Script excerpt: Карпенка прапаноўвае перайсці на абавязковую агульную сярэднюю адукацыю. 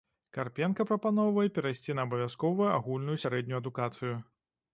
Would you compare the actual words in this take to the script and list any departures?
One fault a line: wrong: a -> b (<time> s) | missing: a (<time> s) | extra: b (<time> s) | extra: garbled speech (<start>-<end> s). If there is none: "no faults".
no faults